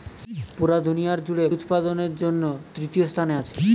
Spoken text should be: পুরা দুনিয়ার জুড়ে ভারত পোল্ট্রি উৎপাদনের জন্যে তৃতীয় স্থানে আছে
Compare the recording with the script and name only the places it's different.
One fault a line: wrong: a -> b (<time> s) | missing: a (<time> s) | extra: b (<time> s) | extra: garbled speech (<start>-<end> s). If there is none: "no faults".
missing: ভারত পোল্ট্রি (1.4 s)